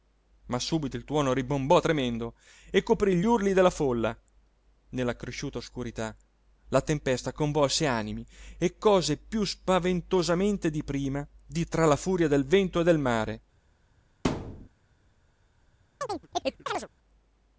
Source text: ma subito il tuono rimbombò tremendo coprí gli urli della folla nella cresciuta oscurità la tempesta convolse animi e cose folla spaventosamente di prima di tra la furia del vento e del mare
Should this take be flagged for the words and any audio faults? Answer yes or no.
yes